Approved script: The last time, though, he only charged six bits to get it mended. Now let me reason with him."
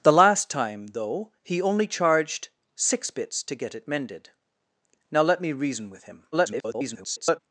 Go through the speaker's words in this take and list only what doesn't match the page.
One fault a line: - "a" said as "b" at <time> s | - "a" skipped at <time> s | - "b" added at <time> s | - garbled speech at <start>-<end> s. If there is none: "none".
- garbled speech at 6.3-7.4 s